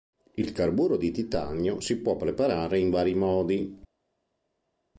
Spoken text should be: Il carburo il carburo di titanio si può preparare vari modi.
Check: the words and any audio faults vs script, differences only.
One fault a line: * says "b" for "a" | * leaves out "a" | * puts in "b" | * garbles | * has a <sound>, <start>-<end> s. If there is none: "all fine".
* leaves out "il carburo"
* puts in "in"